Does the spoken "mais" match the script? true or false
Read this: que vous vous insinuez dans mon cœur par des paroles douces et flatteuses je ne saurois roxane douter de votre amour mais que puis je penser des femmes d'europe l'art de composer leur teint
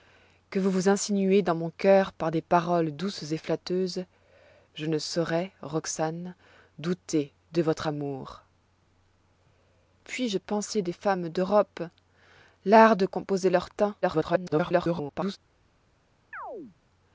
false